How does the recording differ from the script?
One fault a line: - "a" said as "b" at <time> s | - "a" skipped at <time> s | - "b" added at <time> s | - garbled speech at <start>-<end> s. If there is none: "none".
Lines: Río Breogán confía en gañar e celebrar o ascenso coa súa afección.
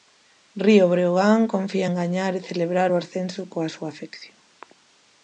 none